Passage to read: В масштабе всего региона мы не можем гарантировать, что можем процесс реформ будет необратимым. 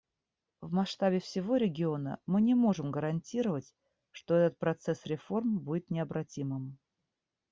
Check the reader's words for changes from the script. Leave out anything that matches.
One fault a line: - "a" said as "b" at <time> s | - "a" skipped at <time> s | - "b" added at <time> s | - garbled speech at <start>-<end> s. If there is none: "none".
- "можем" said as "этот" at 4.3 s